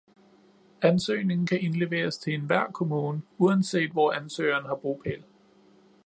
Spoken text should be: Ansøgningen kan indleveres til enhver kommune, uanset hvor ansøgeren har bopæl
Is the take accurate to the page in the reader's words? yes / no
yes